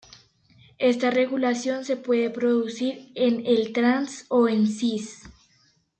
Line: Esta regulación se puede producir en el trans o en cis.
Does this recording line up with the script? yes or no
yes